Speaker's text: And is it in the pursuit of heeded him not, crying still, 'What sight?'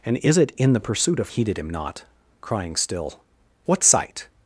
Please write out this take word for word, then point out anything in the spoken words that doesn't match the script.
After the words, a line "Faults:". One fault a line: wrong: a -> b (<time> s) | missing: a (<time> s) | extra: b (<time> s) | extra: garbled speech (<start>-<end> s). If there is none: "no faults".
And is it in the pursuit of heeded him not, crying still, 'What sight?'
Faults:
no faults